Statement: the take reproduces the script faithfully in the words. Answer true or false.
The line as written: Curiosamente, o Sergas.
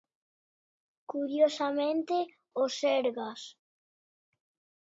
true